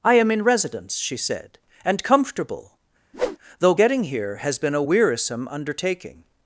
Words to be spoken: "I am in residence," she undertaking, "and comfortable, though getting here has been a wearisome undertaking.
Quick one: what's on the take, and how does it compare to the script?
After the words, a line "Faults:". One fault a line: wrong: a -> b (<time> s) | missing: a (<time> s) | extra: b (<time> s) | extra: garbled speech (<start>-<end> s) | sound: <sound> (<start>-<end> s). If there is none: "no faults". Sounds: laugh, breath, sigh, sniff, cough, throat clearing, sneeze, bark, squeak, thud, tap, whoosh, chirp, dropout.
"I am in residence," she said, "and comfortable, though getting here has been a wearisome undertaking.
Faults:
wrong: undertaking -> said (1.1 s)
sound: whoosh (3.1-3.4 s)